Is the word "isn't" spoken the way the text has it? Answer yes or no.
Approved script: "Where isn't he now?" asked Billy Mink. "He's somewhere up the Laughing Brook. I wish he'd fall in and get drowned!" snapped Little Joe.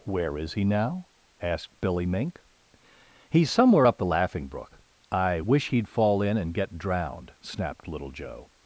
no